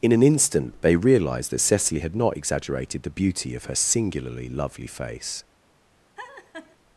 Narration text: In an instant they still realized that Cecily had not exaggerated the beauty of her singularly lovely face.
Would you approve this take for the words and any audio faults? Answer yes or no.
no